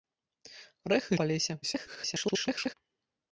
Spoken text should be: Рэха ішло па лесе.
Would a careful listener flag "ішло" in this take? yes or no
yes